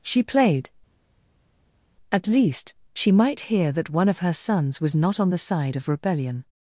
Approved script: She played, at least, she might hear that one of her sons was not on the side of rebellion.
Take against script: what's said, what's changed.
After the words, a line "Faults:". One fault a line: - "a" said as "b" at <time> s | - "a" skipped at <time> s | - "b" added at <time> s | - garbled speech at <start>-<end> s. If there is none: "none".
She played, at least, she might hear that one of her sons was not on the side of rebellion.
Faults:
none